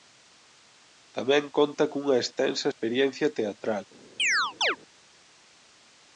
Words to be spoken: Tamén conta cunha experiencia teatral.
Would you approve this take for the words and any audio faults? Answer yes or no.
no